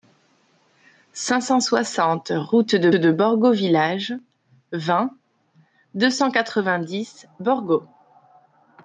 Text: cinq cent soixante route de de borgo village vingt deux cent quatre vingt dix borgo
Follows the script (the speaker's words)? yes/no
yes